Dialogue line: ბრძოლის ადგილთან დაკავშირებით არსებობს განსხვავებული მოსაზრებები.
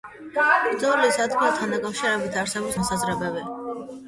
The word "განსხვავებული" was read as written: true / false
false